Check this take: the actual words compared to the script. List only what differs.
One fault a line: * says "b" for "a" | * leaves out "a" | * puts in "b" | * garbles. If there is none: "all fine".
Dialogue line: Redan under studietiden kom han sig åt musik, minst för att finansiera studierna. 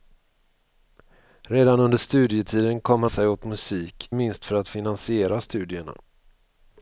all fine